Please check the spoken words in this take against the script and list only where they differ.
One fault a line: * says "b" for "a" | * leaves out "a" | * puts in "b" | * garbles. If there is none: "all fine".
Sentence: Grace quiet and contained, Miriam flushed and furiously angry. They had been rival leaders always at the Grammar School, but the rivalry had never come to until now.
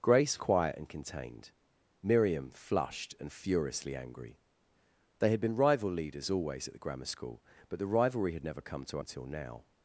all fine